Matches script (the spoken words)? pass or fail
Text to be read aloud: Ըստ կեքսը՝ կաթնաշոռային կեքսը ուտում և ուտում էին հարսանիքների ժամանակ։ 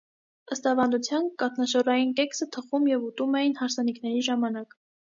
fail